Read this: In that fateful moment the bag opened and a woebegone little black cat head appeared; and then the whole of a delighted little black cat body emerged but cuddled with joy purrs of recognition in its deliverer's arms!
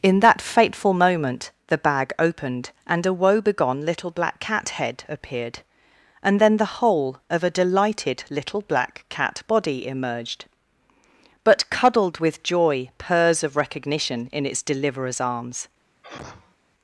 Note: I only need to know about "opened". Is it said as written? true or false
true